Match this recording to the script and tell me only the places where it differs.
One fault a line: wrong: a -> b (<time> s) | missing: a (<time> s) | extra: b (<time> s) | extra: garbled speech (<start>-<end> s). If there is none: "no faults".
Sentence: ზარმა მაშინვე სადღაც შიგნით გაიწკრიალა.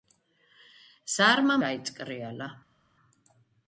missing: მაშინვე სადღაც შიგნით (1.6 s)